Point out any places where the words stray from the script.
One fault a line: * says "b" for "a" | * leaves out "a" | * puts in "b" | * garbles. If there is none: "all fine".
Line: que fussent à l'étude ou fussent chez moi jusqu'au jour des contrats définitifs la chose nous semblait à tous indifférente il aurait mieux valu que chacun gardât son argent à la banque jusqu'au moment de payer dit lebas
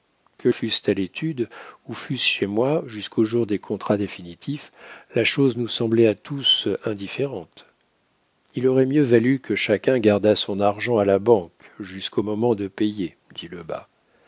all fine